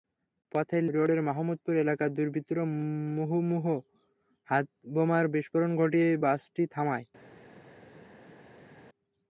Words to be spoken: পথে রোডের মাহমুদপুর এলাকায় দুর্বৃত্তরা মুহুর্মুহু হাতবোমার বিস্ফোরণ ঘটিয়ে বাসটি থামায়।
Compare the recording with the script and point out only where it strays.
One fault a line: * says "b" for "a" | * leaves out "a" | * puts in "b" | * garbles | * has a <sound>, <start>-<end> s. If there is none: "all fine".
all fine